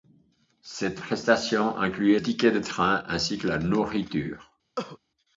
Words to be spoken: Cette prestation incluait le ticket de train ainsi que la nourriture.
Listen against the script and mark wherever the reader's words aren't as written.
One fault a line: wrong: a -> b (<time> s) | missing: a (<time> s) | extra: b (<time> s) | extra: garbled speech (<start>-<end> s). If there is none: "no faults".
missing: le (2.2 s)